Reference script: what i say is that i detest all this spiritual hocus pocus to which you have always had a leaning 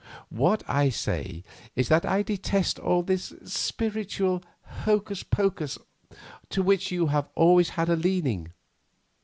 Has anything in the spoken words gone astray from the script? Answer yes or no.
no